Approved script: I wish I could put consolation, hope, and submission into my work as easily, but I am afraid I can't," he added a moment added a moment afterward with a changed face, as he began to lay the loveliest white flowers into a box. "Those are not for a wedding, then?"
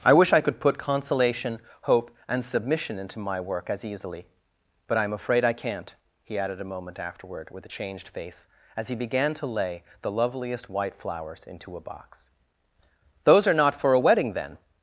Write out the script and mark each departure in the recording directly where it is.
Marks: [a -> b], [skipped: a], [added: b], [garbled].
I wish I could put consolation, hope, and submission into my work as easily, but I am afraid I can't," he added a moment [skipped: added a moment] afterward with a changed face, as he began to lay the loveliest white flowers into a box. "Those are not for a wedding, then?"